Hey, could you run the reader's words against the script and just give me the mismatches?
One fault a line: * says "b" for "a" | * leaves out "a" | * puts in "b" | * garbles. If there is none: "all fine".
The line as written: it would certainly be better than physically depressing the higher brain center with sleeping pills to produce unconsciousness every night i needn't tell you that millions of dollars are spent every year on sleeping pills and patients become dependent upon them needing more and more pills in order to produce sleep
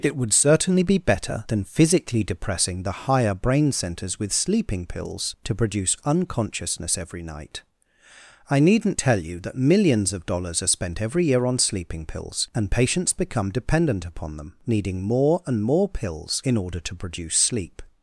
* says "centers" for "center"